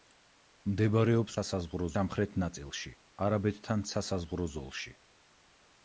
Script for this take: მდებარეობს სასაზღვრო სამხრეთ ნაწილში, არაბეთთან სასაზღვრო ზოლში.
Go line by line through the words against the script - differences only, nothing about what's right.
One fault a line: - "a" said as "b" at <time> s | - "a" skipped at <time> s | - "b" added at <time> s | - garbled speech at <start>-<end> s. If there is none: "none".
none